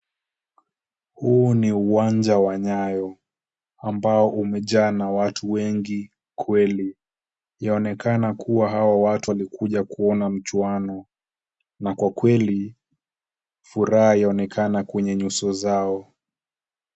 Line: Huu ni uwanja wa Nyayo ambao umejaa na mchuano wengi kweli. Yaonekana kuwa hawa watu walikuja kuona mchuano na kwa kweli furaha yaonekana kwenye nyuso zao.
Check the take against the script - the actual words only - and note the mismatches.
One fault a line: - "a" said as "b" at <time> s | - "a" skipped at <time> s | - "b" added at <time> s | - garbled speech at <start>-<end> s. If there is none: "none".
- "mchuano" said as "watu" at 5.1 s